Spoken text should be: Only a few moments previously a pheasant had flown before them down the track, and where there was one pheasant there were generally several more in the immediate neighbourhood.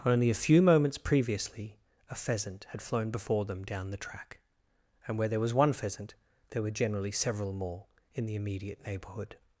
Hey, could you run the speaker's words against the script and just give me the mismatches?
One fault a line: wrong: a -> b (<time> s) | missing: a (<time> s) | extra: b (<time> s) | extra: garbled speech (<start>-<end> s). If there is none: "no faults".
no faults